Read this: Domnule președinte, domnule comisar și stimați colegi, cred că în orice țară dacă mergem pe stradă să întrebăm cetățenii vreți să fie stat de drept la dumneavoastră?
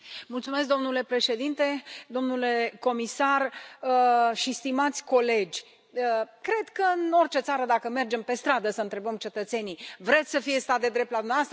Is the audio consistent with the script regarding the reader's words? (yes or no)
yes